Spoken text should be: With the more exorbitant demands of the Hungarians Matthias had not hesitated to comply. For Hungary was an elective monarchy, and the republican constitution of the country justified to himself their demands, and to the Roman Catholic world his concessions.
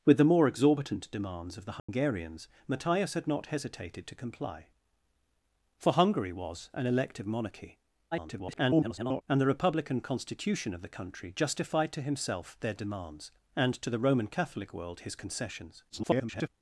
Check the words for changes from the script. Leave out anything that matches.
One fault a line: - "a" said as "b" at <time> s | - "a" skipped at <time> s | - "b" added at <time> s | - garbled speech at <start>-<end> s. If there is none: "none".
- garbled speech at 8.1-9.2 s
- garbled speech at 15.9-16.5 s